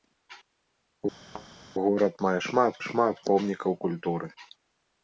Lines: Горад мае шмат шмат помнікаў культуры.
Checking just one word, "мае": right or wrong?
right